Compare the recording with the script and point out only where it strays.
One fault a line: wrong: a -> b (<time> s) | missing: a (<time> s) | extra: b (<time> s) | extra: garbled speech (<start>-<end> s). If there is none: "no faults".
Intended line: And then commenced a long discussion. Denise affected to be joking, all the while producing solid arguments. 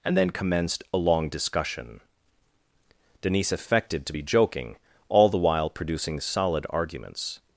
no faults